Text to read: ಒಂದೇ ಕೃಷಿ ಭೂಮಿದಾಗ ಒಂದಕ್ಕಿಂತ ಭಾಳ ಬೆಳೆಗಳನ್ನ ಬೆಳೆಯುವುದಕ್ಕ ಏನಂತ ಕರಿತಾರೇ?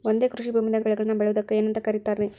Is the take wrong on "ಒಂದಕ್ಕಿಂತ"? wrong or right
wrong